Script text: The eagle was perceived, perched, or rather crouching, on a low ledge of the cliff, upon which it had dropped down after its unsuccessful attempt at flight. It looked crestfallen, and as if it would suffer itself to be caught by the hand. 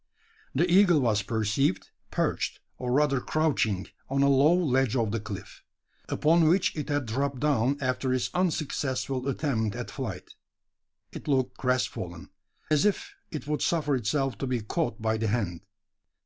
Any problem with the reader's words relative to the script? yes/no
yes